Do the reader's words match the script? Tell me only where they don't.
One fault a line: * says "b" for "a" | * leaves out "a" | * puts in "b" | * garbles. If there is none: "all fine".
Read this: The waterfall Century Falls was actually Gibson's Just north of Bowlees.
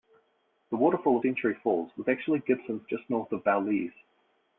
all fine